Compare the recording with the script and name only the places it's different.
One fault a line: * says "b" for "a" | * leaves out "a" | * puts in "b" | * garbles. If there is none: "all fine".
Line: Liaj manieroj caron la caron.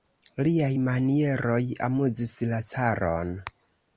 * says "amuzis" for "caron"